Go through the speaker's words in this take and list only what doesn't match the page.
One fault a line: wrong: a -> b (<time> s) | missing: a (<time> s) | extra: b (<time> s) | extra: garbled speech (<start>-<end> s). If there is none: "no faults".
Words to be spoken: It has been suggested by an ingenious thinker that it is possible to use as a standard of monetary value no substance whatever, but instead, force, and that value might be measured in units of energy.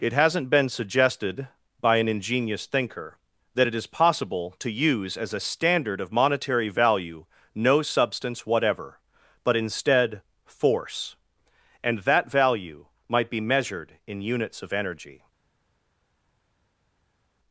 wrong: has -> hasn't (0.1 s)